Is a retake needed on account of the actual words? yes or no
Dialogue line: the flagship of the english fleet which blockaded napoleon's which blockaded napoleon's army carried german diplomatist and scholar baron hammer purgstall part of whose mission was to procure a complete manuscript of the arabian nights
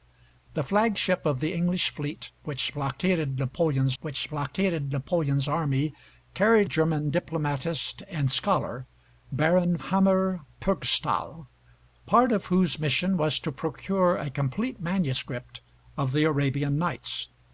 no